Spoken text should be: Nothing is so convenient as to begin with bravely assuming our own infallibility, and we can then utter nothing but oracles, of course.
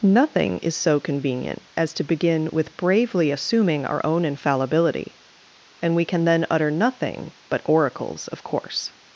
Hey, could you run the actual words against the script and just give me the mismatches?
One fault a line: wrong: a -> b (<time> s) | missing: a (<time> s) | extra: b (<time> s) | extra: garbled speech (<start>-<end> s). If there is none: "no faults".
no faults